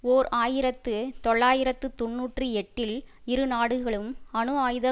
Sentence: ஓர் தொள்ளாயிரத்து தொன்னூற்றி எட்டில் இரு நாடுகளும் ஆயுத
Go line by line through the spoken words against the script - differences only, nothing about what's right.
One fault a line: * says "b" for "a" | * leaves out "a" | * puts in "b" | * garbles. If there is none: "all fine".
* puts in "ஆயிரத்து"
* puts in "அணு"